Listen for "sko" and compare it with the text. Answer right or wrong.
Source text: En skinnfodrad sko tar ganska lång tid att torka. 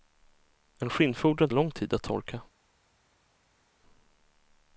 wrong